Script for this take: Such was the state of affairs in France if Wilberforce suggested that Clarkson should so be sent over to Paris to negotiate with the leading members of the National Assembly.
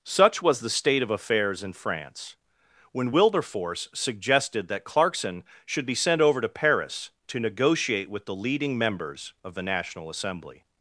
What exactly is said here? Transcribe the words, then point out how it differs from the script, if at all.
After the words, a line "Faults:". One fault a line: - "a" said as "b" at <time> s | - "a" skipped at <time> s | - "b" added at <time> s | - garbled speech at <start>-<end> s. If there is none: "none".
Such was the state of affairs in France when Wilberforce suggested that Clarkson should be sent over to Paris to negotiate with the leading members of the National Assembly.
Faults:
- "if" said as "when" at 2.9 s
- "so" skipped at 5.8 s